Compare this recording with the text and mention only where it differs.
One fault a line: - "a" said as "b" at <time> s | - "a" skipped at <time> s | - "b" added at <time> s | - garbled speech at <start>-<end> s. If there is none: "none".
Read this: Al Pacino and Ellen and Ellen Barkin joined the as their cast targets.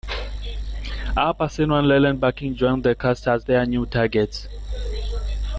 - "and Ellen" skipped at 2.2 s
- "cast" added at 3.0 s
- "cast" said as "new" at 3.6 s